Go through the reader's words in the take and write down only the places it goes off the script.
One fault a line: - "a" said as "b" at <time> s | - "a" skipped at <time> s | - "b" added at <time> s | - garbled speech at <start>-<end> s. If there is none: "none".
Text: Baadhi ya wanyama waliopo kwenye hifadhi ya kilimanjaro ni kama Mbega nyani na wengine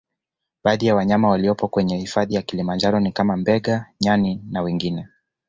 none